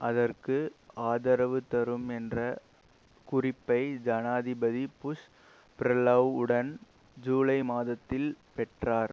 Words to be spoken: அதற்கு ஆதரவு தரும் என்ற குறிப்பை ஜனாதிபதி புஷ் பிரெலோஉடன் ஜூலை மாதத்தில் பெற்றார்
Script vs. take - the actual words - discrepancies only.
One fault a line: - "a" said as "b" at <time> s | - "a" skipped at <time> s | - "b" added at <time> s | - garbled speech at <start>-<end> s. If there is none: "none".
none